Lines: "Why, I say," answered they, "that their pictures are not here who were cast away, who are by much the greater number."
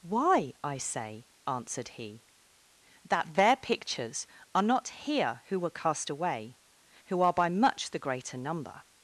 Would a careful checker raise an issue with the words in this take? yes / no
yes